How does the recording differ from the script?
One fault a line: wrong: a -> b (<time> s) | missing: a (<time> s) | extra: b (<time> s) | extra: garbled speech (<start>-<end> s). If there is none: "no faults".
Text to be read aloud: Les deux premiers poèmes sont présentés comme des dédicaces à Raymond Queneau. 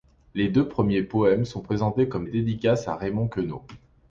missing: des (2.2 s)